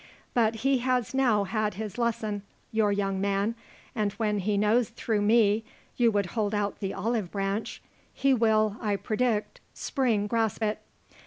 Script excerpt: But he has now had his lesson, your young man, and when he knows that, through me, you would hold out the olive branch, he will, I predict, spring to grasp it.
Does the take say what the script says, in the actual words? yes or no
no